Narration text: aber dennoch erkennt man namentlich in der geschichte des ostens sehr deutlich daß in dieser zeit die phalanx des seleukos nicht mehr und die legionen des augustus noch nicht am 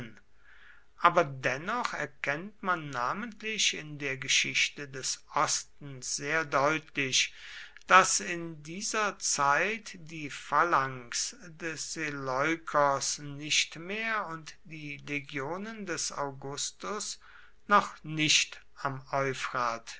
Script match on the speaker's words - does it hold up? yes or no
yes